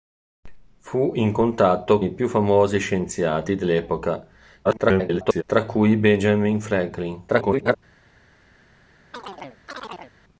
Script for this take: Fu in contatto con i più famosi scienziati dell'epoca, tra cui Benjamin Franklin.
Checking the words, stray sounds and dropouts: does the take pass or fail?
fail